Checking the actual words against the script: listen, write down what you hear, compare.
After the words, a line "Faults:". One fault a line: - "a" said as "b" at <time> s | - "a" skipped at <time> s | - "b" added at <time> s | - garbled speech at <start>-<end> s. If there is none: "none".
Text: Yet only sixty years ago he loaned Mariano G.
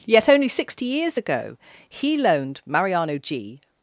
Yet only sixty years ago he loaned Mariano G.
Faults:
none